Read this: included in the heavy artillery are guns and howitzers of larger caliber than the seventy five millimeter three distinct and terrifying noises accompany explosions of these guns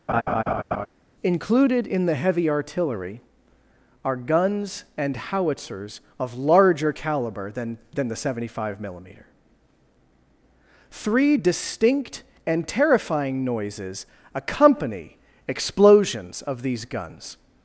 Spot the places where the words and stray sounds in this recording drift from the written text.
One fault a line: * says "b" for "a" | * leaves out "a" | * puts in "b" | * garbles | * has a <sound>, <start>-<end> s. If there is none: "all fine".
* has a laugh, 0.1-0.9 s
* puts in "than"